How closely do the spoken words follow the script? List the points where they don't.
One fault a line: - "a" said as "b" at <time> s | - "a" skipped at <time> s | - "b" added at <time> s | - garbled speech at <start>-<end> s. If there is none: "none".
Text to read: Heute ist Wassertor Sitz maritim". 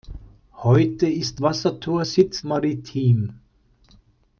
none